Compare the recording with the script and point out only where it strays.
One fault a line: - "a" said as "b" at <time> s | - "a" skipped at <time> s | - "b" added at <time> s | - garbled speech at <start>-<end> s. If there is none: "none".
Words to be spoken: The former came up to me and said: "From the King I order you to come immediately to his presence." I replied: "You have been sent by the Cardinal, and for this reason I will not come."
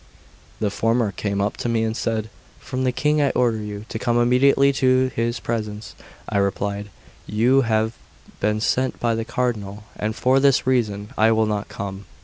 none